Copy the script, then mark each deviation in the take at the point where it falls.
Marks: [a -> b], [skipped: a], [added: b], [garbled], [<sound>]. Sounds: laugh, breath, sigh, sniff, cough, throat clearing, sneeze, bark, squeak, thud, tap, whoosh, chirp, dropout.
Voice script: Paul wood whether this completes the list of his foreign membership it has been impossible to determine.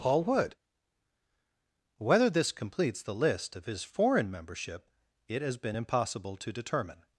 Paul wood whether this completes the list of his foreign membership it has been impossible to determine.